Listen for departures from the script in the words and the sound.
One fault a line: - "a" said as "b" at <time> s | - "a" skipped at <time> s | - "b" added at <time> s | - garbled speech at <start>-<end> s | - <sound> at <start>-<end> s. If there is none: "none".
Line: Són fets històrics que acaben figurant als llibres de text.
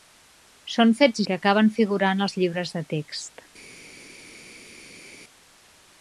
- "històrics" skipped at 1.2 s